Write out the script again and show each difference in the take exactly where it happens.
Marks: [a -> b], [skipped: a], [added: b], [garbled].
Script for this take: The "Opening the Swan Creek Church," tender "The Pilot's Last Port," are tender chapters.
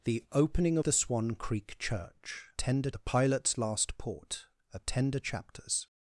The "Opening the Swan Creek Church," tender "The Pilot's Last Port," are tender chapters.